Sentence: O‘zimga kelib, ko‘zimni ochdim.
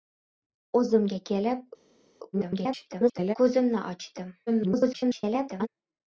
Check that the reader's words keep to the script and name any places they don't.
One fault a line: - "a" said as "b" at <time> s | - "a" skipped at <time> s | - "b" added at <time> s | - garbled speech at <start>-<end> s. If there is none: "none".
- garbled speech at 2.3-3.4 s
- garbled speech at 4.5-5.7 s